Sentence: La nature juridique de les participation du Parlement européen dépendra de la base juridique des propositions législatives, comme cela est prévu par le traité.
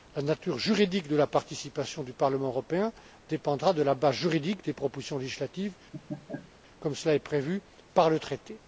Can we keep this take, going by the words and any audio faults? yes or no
no